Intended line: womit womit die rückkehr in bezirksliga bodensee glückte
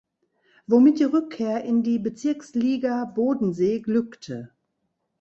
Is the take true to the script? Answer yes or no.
no